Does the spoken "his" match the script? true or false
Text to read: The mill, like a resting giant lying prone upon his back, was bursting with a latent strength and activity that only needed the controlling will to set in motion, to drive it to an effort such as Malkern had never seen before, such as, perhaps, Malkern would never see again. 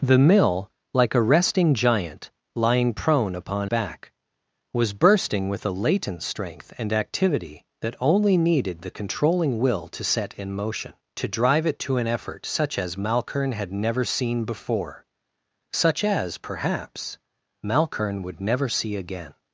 false